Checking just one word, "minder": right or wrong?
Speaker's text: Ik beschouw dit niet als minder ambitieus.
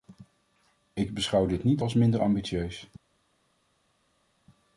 right